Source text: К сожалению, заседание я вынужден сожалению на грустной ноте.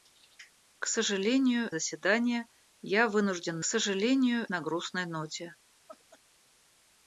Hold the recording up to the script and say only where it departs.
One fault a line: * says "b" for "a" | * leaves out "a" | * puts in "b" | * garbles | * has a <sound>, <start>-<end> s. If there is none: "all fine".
* has a laugh, 5.9-6.2 s